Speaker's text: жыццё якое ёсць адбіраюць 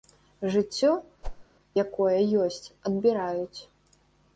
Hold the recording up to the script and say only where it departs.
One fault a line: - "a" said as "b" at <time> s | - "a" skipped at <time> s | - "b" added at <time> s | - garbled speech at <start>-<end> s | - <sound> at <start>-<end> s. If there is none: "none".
- whoosh at 1.2-1.5 s